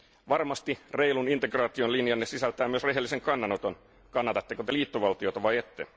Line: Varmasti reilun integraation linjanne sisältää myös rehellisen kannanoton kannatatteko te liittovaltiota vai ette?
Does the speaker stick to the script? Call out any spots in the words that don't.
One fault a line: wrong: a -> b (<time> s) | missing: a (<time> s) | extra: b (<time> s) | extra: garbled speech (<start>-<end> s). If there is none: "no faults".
no faults